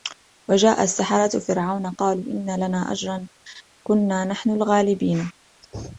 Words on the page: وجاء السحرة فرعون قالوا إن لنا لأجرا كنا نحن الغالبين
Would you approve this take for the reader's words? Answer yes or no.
yes